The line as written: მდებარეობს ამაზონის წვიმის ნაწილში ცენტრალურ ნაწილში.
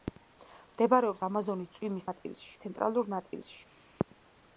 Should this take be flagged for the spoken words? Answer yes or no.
no